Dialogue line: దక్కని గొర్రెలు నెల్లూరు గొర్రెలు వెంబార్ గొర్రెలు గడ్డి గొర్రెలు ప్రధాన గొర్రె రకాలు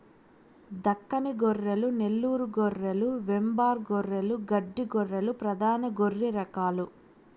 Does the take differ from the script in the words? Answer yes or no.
no